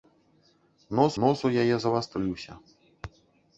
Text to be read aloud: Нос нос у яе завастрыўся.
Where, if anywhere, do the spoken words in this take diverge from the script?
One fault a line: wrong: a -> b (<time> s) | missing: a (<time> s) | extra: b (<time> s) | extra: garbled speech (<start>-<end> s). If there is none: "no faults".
no faults